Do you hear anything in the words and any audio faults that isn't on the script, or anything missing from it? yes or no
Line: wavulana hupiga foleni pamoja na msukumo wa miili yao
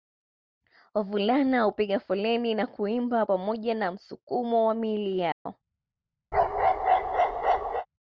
yes